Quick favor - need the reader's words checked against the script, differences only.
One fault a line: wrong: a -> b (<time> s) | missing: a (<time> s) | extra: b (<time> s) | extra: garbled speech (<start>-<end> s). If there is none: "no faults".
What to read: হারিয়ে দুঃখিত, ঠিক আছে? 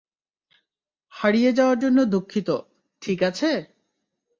extra: যাওয়ার জন্য (1.5 s)